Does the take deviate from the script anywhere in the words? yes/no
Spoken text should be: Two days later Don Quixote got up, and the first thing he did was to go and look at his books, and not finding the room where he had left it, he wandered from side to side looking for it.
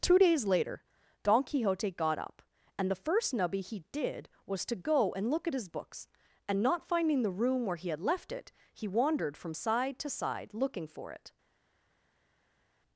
yes